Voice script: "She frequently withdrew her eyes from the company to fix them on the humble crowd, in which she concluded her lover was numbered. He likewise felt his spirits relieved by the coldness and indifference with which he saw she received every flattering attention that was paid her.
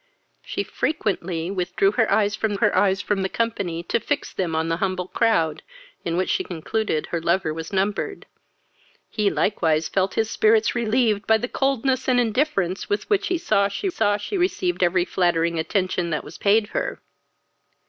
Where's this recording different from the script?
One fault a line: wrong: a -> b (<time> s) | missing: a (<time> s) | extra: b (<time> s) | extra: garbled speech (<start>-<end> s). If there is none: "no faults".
extra: her eyes from (2.5 s)
extra: saw she (13.9 s)